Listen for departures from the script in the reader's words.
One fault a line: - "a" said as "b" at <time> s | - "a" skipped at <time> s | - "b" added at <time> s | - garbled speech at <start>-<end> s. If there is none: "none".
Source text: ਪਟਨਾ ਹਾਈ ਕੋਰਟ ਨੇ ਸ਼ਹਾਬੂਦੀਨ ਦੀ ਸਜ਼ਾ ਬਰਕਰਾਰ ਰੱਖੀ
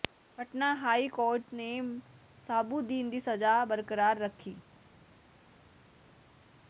none